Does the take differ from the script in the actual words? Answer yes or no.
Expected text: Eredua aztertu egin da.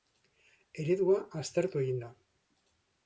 no